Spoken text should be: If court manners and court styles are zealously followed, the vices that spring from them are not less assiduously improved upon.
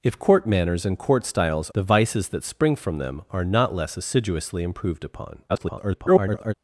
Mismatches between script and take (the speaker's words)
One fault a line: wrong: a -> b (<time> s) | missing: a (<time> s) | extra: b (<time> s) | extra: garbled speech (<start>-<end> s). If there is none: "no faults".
missing: are zealously followed (1.7 s)
extra: garbled speech (5.5-6.5 s)